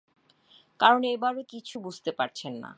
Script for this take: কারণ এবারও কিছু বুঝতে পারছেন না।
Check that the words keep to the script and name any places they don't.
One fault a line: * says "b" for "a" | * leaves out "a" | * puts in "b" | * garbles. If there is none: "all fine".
all fine